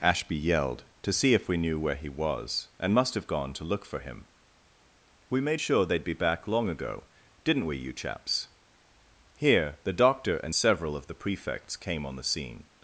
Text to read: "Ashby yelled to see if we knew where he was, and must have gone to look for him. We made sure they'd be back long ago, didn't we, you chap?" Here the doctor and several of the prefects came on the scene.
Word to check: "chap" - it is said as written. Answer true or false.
false